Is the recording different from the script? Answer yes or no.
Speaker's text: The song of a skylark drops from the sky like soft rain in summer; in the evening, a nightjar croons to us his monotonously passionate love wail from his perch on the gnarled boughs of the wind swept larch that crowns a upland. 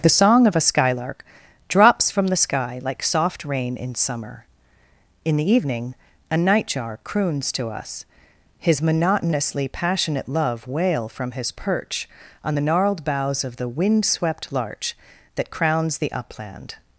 yes